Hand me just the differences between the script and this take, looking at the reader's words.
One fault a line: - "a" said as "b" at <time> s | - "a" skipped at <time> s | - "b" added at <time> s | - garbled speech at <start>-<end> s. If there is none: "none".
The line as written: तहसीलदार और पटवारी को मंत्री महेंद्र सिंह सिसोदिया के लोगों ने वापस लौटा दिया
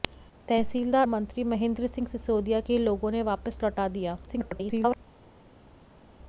- "और पटवारी को" skipped at 1.1 s
- garbled speech at 4.3-5.0 s